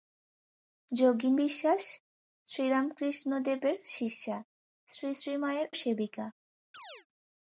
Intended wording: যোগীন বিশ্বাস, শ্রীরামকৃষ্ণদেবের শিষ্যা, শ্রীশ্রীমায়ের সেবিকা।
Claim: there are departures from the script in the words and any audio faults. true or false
true